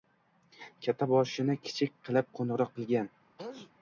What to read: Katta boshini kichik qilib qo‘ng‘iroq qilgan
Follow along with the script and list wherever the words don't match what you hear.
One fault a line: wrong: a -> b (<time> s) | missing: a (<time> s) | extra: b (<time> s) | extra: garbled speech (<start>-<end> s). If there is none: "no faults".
no faults